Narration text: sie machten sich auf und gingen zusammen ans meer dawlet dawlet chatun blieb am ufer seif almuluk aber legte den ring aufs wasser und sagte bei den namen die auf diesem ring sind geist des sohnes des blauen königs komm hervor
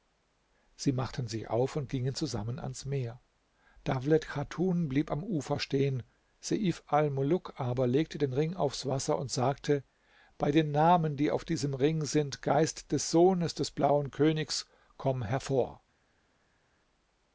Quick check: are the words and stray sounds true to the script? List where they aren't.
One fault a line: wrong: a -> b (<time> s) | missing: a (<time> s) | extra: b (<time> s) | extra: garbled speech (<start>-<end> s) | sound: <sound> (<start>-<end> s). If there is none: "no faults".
missing: dawlet (4.3 s)
extra: stehen (5.6 s)